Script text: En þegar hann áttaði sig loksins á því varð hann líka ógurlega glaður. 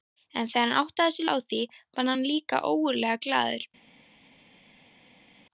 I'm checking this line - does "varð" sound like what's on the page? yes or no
yes